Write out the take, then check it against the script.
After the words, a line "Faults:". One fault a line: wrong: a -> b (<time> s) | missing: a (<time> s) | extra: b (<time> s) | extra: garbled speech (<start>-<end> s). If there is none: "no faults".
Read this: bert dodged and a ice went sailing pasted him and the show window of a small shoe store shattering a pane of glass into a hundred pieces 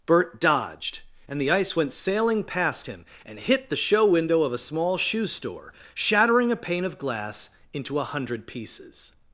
bert dodged and the ice went sailing past him and hit the show window of a small shoe store shattering a pane of glass into a hundred pieces
Faults:
wrong: a -> the (1.4 s)
wrong: pasted -> past (2.4 s)
extra: hit (3.4 s)